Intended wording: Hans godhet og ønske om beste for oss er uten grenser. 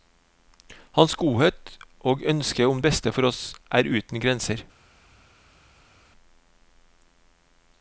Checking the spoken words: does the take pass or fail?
pass